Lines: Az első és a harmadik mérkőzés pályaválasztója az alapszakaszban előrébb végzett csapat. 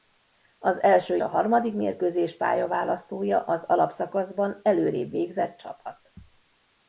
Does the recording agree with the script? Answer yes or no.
no